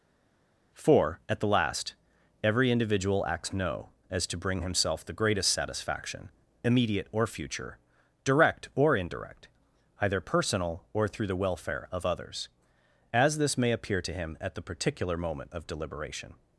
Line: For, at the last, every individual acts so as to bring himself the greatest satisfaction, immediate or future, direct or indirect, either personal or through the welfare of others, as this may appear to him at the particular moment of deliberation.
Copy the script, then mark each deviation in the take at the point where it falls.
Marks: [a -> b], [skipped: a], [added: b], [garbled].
For, at the last, every individual acts [so -> no] as to bring himself the greatest satisfaction, immediate or future, direct or indirect, either personal or through the welfare of others, as this may appear to him at the particular moment of deliberation.